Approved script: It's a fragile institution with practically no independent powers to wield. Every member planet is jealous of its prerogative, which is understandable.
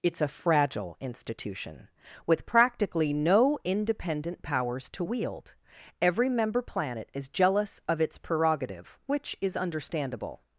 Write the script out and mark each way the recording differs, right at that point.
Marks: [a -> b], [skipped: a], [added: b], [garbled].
It's a fragile institution with practically no independent powers to wield. Every member planet is jealous of its prerogative, which is understandable.